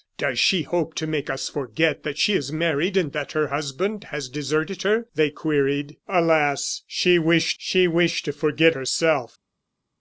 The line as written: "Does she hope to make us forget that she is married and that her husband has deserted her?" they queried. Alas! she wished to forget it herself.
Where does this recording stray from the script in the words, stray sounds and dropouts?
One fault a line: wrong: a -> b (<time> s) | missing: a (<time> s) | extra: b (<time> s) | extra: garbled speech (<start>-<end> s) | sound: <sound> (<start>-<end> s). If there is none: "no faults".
extra: she wished (7.6 s)
missing: it (8.8 s)